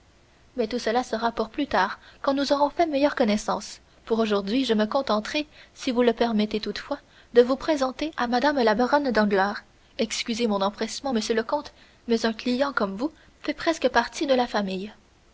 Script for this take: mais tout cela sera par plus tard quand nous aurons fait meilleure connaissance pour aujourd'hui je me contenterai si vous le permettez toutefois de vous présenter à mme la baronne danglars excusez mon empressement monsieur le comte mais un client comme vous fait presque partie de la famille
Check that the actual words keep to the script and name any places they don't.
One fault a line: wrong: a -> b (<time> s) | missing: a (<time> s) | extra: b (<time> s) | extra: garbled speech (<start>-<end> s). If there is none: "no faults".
wrong: par -> pour (1.3 s)